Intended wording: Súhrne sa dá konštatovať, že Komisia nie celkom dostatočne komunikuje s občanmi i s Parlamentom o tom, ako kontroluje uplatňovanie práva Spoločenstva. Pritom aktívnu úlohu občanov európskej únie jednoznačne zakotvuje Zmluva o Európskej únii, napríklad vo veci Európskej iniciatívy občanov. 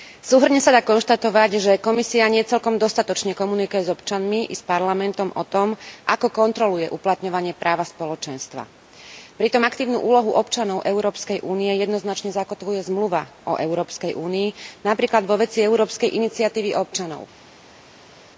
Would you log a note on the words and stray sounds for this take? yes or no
no